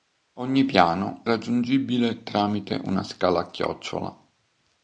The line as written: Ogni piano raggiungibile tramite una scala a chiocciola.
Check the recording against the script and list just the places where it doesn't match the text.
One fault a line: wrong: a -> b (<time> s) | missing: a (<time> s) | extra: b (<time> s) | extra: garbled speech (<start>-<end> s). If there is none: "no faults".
no faults